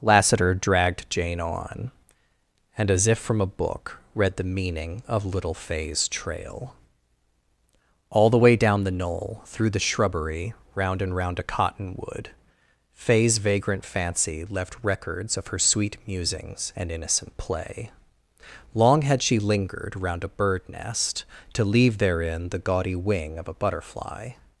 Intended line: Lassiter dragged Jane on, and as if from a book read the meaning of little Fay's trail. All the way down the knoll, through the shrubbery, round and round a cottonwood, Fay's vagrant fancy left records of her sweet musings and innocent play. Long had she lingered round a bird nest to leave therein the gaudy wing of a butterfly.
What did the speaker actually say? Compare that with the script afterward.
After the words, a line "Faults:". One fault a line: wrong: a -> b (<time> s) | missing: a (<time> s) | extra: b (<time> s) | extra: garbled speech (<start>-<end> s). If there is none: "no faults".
Lassiter dragged Jane on, and as if from a book read the meaning of little Fay's trail. All the way down the knoll, through the shrubbery, round and round a cottonwood, Fay's vagrant fancy left records of her sweet musings and innocent play. Long had she lingered round a bird nest to leave therein the gaudy wing of a butterfly.
Faults:
no faults